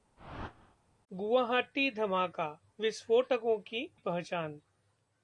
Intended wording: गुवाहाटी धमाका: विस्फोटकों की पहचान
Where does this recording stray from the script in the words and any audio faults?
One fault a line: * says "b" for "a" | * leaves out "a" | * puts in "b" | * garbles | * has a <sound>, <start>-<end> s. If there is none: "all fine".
* has a whoosh, 0.2-0.8 s